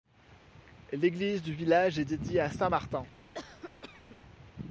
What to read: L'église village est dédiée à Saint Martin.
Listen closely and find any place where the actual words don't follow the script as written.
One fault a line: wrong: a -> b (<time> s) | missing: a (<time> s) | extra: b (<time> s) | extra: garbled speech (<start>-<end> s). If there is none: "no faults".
extra: du (1.4 s)